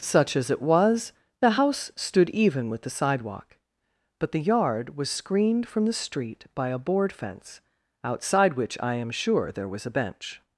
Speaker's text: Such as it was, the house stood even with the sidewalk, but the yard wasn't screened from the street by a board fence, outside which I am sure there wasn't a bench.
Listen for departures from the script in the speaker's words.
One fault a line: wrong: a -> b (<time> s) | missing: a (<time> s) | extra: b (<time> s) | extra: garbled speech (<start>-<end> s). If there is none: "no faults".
wrong: wasn't -> was (4.9 s)
wrong: wasn't -> was (9.7 s)